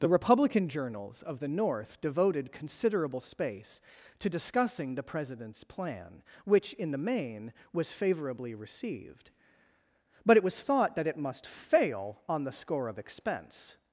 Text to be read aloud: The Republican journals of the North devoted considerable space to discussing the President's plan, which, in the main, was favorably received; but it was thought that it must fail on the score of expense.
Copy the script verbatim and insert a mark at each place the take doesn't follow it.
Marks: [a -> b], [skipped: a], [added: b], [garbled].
The Republican journals of the North devoted considerable space to discussing the President's plan, which, in the main, was favorably received; but it was thought that it must fail on the score of expense.